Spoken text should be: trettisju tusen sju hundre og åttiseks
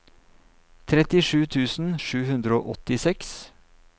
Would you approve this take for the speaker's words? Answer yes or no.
yes